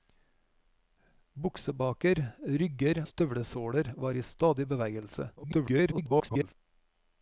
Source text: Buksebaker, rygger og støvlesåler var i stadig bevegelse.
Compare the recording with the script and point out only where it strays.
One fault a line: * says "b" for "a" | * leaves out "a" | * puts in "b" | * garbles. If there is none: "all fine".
* leaves out "og"
* garbles